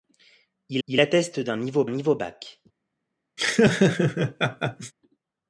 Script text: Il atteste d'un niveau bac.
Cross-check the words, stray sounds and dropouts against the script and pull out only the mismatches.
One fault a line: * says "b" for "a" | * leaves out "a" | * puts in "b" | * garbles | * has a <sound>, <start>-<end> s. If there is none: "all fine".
* puts in "il"
* puts in "niveau"
* has a laugh, 3.4-4.9 s